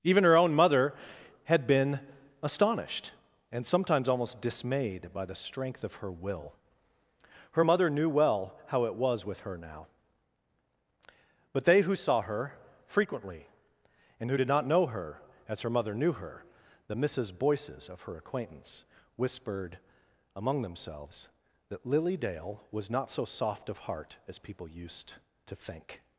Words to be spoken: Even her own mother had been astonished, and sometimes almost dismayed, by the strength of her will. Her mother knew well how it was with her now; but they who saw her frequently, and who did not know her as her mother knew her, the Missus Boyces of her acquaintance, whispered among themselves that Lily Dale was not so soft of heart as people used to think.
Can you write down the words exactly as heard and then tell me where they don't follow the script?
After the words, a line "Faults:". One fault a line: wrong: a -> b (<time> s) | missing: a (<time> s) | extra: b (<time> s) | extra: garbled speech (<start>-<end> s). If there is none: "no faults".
Even her own mother had been astonished, and sometimes almost dismayed, by the strength of her will. Her mother knew well how it was with her now; but they who saw her frequently, and who did not know her as her mother knew her, the Missus Boyces of her acquaintance, whispered among themselves that Lily Dale was not so soft of heart as people used to think.
Faults:
no faults